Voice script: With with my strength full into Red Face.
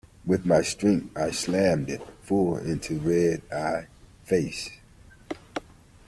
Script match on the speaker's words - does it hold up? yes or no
no